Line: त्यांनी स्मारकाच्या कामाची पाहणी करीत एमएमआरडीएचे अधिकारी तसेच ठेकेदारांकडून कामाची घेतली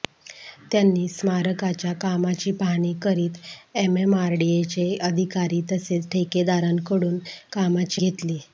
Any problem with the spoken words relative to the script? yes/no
no